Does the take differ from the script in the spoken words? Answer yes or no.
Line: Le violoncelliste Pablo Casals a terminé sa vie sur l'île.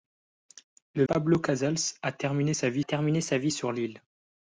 yes